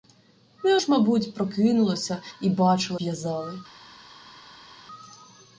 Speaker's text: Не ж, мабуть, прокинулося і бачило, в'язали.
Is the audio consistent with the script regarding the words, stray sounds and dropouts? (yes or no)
yes